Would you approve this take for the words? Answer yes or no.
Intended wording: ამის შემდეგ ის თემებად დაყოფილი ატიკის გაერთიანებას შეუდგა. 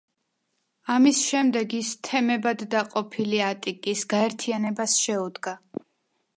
yes